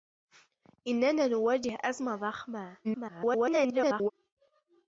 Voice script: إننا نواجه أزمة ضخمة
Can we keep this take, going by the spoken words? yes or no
no